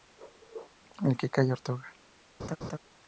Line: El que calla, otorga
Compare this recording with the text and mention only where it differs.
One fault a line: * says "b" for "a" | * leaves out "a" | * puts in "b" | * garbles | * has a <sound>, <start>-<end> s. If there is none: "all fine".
* has a laugh, 2.4-2.8 s